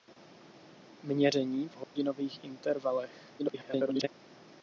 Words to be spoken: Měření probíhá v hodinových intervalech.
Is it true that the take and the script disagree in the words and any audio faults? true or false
true